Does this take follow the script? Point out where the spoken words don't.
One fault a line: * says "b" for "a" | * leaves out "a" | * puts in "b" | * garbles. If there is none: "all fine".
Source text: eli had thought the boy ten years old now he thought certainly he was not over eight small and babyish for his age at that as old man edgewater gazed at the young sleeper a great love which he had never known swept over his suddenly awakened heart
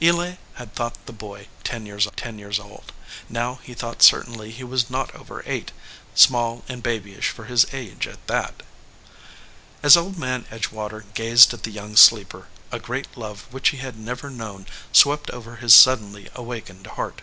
* puts in "ten years"